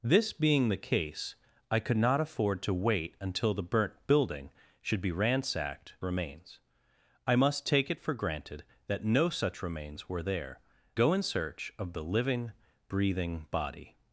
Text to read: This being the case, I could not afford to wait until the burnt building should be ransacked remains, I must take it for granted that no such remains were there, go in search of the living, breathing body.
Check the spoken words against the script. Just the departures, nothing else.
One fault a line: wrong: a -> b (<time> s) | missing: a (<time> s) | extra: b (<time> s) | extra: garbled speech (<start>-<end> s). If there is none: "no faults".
no faults